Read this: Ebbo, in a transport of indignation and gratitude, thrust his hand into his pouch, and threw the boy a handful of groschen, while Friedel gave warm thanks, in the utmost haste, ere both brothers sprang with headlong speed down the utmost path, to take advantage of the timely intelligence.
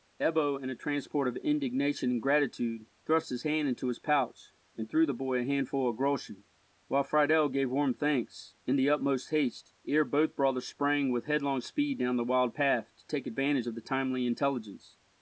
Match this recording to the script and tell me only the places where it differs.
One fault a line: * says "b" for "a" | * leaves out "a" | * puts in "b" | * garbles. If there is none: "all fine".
* says "wild" for "utmost"